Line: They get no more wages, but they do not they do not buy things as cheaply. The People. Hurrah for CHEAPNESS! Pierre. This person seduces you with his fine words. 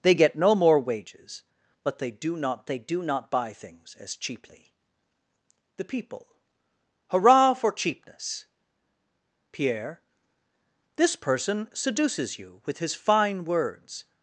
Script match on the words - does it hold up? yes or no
yes